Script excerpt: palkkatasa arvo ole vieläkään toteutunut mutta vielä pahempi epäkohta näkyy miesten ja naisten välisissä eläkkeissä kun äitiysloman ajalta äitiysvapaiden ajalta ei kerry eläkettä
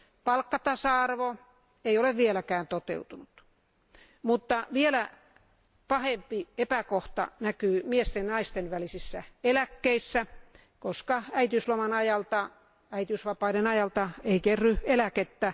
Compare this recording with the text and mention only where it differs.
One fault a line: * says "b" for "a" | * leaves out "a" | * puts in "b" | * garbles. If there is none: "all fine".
* puts in "ei"
* says "koska" for "kun"